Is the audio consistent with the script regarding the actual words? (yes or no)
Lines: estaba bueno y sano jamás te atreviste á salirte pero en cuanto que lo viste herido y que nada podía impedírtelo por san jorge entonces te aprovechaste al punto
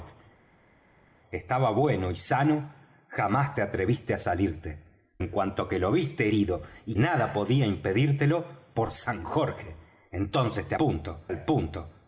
no